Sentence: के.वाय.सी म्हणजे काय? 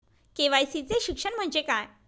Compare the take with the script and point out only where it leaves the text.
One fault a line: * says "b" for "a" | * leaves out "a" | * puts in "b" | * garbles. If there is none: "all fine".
* puts in "चे शिक्षण"